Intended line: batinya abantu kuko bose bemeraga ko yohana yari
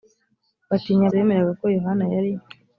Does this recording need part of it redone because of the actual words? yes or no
yes